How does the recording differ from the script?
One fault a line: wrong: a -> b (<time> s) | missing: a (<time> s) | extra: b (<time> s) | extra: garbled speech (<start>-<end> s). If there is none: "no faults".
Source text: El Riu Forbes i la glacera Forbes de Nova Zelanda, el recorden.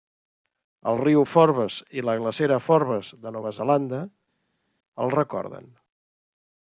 no faults